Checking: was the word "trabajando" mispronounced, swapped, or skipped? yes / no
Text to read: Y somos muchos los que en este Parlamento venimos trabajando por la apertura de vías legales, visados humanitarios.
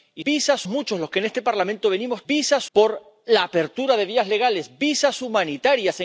yes